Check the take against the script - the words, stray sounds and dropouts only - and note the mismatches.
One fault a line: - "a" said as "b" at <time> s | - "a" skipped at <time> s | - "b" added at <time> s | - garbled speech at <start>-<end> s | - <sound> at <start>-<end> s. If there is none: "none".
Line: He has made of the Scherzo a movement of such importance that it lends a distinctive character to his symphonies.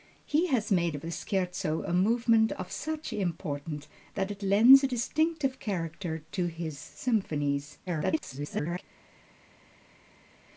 - garbled speech at 7.9-8.8 s